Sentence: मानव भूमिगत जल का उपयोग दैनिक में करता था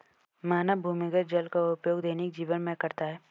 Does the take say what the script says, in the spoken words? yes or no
no